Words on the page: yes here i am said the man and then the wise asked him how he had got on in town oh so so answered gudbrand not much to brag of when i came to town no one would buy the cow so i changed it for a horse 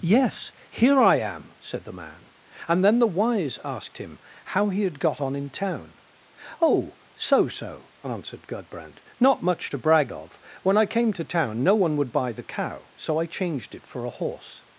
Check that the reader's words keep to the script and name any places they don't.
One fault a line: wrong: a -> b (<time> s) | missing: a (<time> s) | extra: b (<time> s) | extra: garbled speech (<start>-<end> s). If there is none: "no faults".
no faults